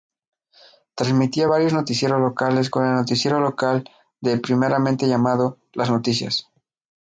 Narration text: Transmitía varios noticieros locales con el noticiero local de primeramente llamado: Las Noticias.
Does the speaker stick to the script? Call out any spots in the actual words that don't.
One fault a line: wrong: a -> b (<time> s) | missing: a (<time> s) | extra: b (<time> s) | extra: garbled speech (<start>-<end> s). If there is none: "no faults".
no faults